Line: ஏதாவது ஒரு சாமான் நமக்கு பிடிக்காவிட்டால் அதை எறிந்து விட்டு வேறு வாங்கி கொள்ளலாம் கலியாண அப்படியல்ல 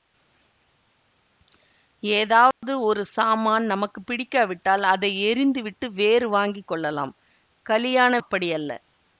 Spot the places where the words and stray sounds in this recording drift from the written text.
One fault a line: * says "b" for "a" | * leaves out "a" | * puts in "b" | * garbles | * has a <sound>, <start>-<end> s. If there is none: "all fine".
* has a dropout, 2.5-2.6 s